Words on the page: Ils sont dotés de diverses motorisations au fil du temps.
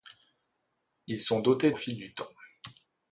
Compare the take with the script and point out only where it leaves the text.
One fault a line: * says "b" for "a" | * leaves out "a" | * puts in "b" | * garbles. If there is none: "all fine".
* leaves out "de diverses motorisations"